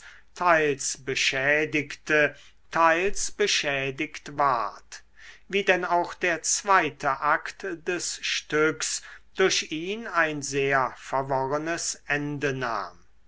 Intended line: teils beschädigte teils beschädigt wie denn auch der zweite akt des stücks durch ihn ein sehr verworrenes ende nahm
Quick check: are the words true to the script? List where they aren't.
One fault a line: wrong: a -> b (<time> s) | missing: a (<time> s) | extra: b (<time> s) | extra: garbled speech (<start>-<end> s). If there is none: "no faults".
extra: ward (4.4 s)